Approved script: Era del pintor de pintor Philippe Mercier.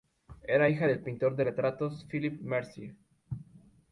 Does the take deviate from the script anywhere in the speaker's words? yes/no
yes